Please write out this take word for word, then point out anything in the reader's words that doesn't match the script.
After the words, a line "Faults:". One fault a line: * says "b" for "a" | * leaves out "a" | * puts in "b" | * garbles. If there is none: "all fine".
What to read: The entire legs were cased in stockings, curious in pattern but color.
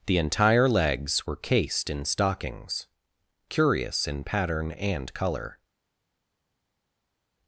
The entire legs were cased in stockings, curious in pattern and color.
Faults:
* says "and" for "but"